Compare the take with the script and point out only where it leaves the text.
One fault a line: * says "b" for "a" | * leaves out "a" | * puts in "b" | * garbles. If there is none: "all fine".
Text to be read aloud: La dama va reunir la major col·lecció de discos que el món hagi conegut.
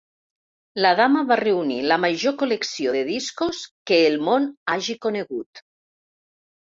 all fine